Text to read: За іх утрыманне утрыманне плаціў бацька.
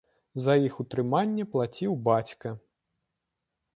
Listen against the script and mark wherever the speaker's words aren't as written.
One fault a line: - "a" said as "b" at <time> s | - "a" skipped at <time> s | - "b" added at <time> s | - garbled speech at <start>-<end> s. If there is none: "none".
- "утрыманне" skipped at 1.4 s